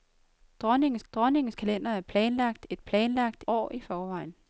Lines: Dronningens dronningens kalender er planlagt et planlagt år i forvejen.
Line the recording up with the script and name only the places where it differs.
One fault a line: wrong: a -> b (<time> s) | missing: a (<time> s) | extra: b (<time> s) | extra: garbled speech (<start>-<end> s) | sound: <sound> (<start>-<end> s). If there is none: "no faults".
no faults